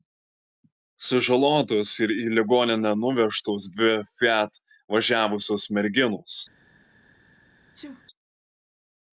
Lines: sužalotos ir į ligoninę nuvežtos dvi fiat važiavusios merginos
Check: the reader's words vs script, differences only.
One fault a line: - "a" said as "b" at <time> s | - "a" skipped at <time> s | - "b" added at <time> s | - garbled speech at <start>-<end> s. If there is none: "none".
none